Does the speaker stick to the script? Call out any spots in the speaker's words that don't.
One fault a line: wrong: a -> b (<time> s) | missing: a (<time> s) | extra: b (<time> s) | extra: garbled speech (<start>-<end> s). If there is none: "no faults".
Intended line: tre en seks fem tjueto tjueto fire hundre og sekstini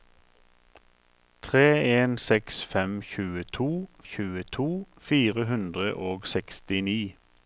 no faults